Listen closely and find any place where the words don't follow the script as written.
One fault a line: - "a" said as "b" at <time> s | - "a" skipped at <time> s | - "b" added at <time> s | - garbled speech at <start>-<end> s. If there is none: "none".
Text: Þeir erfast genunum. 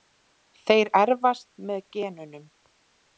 - "með" added at 1.7 s